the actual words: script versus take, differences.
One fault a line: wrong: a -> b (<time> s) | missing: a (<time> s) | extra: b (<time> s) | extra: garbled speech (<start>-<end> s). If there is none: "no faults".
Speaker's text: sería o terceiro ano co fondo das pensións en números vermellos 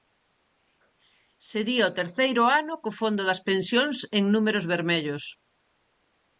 no faults